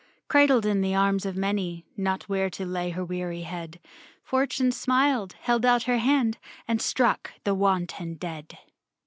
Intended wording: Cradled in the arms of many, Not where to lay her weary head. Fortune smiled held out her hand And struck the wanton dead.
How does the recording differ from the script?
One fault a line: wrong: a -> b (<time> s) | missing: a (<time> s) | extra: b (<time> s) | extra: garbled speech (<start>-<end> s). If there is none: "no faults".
no faults